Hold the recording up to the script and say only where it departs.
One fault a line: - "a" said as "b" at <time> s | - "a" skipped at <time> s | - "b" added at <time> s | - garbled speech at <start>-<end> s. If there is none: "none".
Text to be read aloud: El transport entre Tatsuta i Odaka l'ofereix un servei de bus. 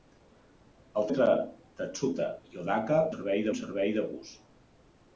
- "transport" skipped at 1.1 s
- "l'ofereix" said as "servei" at 3.1 s